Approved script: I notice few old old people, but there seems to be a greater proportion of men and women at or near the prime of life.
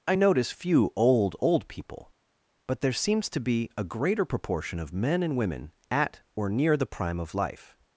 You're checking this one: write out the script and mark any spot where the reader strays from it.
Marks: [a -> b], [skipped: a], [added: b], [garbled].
I notice few old old people, but there seems to be a greater proportion of men and women at or near the prime of life.